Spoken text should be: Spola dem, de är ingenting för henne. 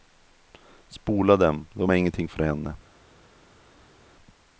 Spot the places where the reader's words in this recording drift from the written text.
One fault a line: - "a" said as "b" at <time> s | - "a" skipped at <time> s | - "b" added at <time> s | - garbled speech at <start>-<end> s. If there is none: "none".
none